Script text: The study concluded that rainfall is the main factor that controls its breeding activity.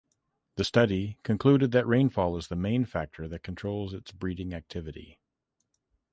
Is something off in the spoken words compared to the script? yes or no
no